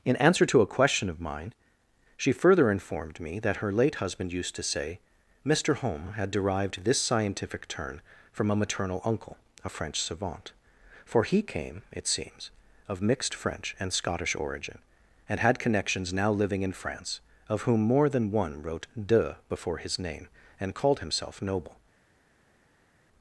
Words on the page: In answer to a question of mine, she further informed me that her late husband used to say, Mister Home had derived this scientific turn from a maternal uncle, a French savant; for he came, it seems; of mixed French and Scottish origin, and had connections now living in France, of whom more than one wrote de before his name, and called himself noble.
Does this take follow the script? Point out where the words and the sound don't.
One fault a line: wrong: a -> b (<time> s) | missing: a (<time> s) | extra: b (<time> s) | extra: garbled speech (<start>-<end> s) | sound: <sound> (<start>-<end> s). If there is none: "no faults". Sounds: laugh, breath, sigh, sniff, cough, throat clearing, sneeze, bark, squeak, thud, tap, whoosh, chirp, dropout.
no faults